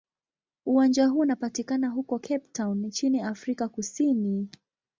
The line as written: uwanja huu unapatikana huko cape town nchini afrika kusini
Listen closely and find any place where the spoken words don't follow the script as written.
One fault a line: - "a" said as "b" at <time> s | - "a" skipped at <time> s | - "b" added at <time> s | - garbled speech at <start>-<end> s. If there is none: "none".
none